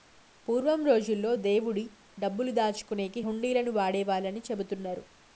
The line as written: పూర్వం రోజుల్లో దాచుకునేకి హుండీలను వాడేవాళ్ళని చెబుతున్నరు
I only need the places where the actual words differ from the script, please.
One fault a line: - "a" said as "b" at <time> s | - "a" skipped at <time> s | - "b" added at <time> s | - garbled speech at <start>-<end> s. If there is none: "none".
- "దేవుడి డబ్బులు" added at 1.3 s